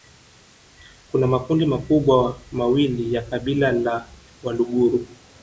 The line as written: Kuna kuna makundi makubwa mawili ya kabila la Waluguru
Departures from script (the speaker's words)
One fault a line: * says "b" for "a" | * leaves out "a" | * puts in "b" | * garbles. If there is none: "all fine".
* leaves out "kuna"